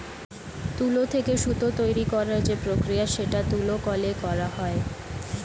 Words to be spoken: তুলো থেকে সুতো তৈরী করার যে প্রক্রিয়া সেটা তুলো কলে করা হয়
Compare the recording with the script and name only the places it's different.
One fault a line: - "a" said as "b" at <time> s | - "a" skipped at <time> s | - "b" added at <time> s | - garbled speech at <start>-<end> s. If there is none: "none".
none